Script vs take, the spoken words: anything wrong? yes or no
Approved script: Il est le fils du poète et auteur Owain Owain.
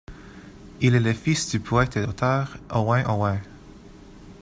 no